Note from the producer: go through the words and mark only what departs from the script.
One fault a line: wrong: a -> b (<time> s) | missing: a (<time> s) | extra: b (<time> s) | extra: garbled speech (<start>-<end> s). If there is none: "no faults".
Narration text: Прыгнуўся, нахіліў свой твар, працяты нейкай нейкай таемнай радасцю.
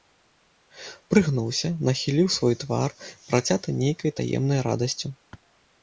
missing: нейкай (4.1 s)